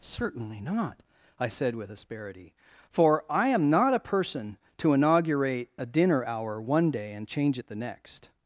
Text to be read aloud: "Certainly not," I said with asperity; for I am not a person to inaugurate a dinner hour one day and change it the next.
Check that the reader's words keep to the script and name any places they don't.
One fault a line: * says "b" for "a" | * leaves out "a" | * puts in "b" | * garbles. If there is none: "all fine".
all fine